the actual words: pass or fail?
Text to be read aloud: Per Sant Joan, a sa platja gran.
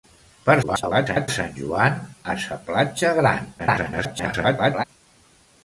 fail